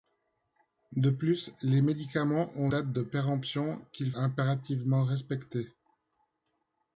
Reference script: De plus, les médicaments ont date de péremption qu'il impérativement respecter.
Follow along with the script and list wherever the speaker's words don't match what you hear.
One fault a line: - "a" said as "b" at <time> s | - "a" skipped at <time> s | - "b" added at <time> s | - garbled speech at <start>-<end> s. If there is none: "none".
none